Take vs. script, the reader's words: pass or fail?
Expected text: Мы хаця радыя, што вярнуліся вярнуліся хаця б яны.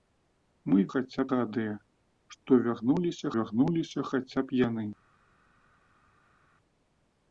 pass